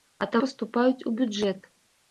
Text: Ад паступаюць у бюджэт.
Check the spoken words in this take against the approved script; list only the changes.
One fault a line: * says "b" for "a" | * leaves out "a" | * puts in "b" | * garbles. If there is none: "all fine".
all fine